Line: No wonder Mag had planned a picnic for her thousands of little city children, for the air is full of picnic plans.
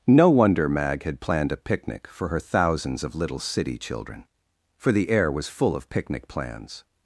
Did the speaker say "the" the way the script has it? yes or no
yes